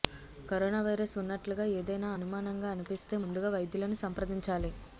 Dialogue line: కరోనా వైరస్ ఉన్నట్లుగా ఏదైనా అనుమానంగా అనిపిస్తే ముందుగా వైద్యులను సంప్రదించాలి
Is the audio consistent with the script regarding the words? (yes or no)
yes